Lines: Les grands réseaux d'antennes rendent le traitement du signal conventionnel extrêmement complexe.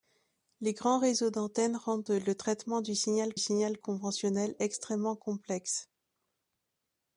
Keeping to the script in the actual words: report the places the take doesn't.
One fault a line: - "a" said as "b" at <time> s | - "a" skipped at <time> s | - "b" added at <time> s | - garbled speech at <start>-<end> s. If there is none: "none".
- "signal" added at 3.4 s